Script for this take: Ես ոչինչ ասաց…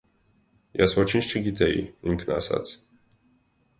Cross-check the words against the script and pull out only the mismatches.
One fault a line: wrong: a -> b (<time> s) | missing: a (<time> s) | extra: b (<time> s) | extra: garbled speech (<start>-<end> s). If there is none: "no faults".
extra: չգիտեի ինքն (1.3 s)